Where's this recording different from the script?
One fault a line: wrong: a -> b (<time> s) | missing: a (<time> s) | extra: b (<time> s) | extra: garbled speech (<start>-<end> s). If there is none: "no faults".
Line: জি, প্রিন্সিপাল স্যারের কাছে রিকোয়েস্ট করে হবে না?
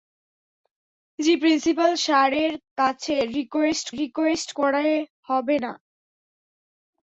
extra: রিকোয়েস্ট (4.0 s)